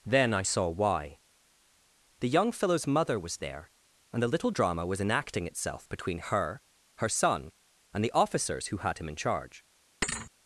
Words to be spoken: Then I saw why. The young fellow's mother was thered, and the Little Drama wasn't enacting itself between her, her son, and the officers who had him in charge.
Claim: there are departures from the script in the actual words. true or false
true